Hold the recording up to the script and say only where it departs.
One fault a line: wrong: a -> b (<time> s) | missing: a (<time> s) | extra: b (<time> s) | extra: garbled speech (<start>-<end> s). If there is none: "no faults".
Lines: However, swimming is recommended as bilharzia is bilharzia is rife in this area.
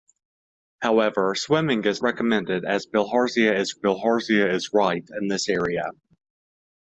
no faults